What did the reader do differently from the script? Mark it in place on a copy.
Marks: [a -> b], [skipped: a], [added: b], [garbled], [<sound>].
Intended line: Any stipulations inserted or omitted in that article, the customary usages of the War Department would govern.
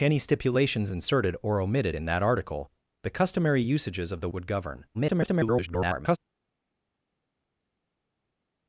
Any stipulations inserted or omitted in that article, the customary usages of the [skipped: War Department] would govern. [garbled]